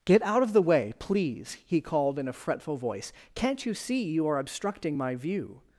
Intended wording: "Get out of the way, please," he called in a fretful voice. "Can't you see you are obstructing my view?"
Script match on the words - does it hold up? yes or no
yes